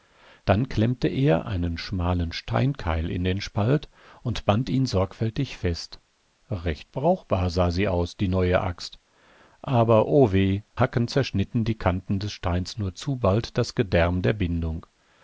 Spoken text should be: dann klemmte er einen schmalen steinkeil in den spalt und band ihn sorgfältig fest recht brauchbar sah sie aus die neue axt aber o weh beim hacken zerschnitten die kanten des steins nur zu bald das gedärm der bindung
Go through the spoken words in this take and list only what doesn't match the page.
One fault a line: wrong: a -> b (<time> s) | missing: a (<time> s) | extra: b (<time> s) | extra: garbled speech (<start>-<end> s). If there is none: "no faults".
missing: beim (10.6 s)